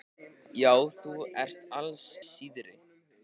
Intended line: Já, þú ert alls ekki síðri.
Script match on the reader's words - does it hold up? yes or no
no